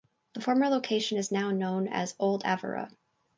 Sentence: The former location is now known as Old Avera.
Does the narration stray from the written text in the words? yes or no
no